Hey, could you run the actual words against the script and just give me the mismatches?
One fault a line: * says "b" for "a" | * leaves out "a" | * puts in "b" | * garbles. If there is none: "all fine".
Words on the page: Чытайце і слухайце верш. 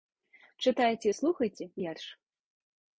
all fine